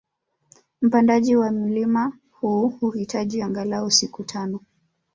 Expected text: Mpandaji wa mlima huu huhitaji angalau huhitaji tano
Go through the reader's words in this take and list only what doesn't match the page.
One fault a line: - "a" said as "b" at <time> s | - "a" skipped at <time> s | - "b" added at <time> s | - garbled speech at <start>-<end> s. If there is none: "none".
- "huhitaji" said as "siku" at 3.9 s